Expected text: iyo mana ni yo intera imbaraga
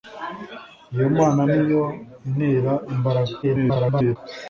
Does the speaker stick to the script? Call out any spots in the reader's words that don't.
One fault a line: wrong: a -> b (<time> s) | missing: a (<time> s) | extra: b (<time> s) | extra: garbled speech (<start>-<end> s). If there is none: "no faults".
extra: garbled speech (3.4-4.2 s)